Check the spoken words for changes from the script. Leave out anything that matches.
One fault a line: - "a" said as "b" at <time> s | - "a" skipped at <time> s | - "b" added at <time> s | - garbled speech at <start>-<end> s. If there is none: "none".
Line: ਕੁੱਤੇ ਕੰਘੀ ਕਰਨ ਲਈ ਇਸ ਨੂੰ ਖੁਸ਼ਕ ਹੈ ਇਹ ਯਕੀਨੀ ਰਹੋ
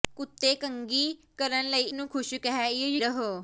- "ਇਸ" skipped at 1.8 s
- "ਯਕੀਨੀ" skipped at 3.0 s